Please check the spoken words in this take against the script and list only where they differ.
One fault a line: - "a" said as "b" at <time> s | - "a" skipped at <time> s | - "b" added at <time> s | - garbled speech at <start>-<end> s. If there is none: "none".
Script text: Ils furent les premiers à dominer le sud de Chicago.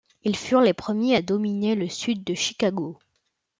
none